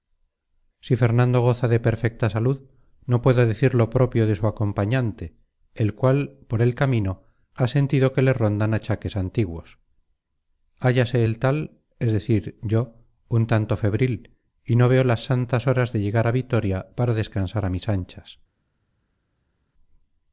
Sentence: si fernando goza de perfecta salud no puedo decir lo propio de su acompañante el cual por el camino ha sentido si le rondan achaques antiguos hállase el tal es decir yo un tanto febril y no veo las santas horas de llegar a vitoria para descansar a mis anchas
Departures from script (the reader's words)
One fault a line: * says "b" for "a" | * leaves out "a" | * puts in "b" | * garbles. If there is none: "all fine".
* says "que" for "si"